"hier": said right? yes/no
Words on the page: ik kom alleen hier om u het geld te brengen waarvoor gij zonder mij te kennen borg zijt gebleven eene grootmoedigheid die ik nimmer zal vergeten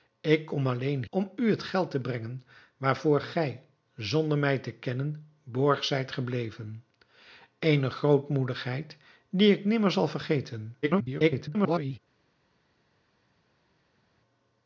no